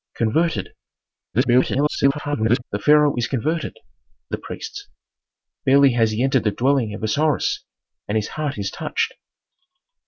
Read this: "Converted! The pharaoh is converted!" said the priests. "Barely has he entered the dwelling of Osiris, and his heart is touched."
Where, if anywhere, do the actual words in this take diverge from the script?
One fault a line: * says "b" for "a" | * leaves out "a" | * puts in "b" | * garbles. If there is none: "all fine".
* garbles
* leaves out "said"